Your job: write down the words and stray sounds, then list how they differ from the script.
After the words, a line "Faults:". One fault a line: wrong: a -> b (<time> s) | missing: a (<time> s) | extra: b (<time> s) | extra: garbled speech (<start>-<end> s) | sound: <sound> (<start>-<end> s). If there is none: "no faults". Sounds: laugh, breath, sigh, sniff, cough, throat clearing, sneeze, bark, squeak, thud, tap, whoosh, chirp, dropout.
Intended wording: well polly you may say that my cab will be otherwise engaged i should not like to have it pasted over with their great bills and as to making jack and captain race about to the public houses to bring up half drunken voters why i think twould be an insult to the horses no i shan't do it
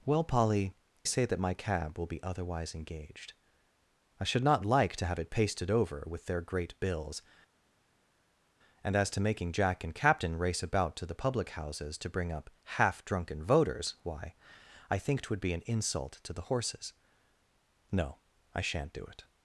well polly say that my cab will be otherwise engaged i should not like to have it pasted over with their great bills and as to making jack and captain race about to the public houses to bring up half drunken voters why i think twould be an insult to the horses no i shan't do it
Faults:
missing: you may (0.7 s)